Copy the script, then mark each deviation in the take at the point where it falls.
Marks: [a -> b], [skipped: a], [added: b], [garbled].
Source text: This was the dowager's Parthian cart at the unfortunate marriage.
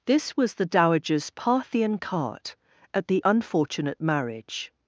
This was the dowager's Parthian cart at the unfortunate marriage.